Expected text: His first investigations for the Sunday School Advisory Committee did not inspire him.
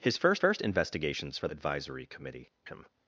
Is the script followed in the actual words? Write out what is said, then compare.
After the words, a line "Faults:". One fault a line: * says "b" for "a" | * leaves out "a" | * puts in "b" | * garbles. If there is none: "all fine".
His first first investigations for Advisory Committee him.
Faults:
* puts in "first"
* leaves out "the Sunday School"
* leaves out "did not inspire"